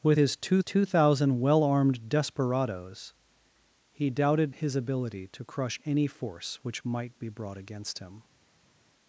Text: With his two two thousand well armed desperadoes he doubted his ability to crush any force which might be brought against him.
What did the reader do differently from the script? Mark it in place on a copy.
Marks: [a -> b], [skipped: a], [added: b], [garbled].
With his two two thousand well armed desperadoes he doubted his ability to crush any force which might be brought against him.